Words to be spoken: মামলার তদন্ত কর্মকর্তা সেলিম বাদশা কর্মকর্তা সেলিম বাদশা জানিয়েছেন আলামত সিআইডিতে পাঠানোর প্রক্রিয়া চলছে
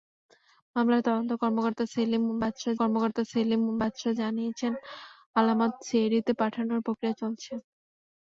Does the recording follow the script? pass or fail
pass